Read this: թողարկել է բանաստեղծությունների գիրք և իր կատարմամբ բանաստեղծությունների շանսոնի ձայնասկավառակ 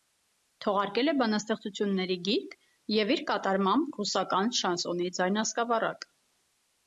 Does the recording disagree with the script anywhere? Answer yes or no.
yes